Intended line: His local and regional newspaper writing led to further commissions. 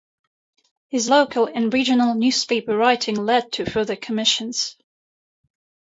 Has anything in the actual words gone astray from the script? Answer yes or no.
no